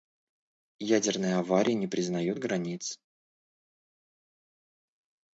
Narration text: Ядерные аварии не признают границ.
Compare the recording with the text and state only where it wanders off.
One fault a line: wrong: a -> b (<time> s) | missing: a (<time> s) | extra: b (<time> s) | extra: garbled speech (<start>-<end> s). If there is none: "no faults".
no faults